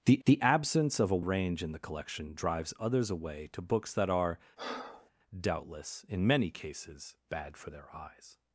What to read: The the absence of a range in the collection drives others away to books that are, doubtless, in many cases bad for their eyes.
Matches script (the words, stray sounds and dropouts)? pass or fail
fail